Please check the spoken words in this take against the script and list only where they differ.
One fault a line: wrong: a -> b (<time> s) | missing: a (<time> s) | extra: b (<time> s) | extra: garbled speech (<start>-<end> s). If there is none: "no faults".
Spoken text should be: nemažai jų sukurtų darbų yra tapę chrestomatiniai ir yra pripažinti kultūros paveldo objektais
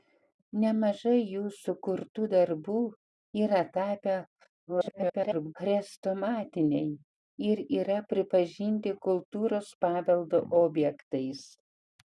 extra: garbled speech (4.7-5.5 s)